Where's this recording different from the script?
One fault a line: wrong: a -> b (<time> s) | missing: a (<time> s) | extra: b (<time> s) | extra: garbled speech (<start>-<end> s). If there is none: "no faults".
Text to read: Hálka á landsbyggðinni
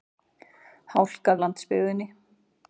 no faults